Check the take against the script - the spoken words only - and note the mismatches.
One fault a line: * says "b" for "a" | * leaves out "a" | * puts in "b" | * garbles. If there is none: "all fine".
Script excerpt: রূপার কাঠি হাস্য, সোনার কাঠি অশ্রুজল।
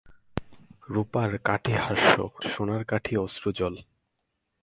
all fine